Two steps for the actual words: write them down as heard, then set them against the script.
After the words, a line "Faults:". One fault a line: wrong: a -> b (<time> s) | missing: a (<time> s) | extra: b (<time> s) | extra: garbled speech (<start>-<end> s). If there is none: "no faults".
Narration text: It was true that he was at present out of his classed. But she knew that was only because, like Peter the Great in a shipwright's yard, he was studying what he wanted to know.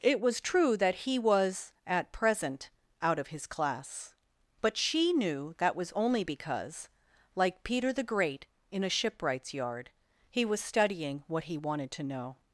It was true that he was at present out of his class. But she knew that was only because, like Peter the Great in a shipwright's yard, he was studying what he wanted to know.
Faults:
wrong: classed -> class (3.5 s)